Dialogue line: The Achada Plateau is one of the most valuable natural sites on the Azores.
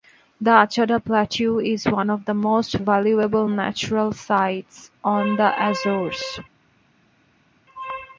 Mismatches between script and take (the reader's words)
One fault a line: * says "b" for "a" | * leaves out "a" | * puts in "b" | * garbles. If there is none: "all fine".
all fine